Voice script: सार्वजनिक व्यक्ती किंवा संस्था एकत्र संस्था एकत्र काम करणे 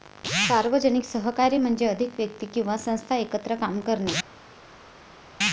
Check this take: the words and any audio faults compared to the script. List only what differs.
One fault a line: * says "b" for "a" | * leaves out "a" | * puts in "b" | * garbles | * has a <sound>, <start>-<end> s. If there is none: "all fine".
* puts in "सहकार्य म्हणजे अधिक"
* leaves out "संस्था एकत्र"